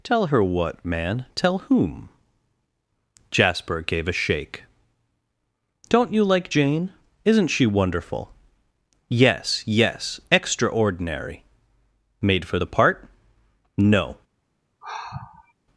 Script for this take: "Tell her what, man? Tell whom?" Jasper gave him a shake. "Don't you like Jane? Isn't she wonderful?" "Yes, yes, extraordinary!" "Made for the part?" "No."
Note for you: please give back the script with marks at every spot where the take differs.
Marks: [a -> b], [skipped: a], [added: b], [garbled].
"Tell her what, man? Tell whom?" Jasper gave [skipped: him] a shake. "Don't you like Jane? Isn't she wonderful?" "Yes, yes, extraordinary!" "Made for the part?" "No."